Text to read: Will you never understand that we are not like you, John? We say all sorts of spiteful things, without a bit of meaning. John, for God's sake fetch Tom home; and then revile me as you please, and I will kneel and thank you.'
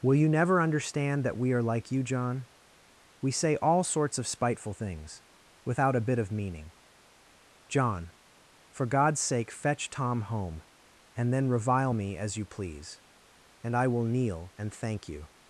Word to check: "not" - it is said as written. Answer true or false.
false